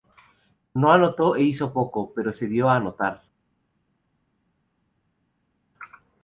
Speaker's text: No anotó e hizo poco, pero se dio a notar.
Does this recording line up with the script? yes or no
yes